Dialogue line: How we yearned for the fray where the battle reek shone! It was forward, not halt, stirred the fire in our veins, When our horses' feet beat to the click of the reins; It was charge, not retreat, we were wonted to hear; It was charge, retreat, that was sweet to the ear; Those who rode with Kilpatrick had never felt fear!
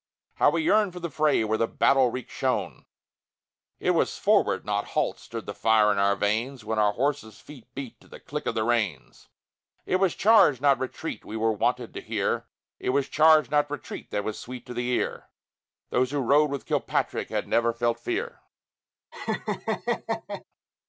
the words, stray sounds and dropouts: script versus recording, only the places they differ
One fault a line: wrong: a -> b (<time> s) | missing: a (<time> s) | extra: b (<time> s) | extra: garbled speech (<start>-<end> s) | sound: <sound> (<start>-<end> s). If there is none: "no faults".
extra: not (13.5 s)
sound: laugh (19.1-20.4 s)